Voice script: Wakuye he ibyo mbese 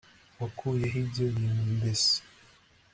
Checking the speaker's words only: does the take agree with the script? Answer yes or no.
no